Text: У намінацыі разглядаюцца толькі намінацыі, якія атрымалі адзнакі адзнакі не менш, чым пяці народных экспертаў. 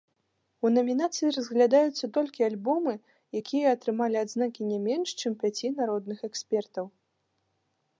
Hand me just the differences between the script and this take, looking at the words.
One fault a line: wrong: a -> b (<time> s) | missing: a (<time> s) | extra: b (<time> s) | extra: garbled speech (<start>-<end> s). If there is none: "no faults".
wrong: намінацыі -> альбомы (2.5 s)
missing: адзнакі (4.6 s)